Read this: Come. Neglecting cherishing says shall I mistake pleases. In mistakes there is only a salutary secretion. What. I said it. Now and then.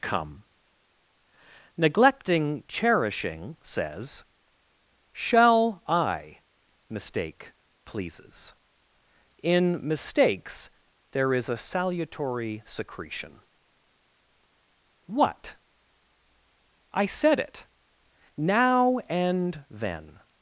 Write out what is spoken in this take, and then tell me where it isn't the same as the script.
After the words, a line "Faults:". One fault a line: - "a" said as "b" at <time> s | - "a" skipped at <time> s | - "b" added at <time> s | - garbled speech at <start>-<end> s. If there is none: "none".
Come. Neglecting cherishing says shall I mistake pleases. In mistakes there is a salutary secretion. What. I said it. Now and then.
Faults:
- "only" skipped at 11.5 s